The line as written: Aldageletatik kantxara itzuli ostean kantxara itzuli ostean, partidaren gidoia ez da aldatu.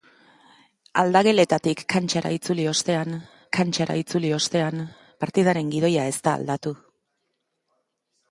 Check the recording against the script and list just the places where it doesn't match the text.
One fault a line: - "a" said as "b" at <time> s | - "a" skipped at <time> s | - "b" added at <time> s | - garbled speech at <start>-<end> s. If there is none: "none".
none